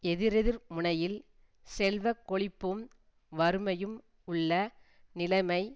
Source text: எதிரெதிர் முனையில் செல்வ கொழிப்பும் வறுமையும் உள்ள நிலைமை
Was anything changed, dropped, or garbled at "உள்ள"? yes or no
no